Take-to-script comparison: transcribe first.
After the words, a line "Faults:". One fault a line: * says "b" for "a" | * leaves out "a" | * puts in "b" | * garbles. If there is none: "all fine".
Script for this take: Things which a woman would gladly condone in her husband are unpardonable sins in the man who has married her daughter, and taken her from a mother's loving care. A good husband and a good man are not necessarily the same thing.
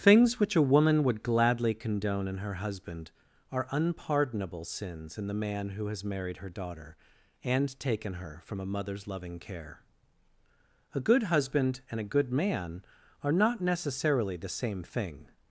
Things which a woman would gladly condone in her husband are unpardonable sins in the man who has married her daughter, and taken her from a mother's loving care. A good husband and a good man are not necessarily the same thing.
Faults:
all fine